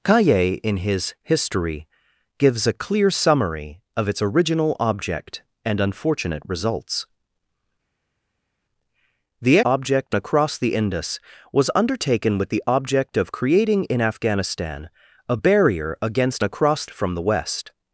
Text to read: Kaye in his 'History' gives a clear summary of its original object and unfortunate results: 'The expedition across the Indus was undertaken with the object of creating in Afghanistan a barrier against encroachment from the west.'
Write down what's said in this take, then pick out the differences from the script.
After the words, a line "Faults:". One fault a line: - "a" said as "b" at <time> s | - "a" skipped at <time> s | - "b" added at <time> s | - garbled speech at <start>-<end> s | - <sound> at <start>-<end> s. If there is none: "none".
Kaye in his 'History' gives a clear summary of its original object and unfortunate results: 'The object across the Indus was undertaken with the object of creating in Afghanistan a barrier against across from the west.'
Faults:
- "expedition" said as "object" at 9.6 s
- "encroachment" said as "across" at 16.4 s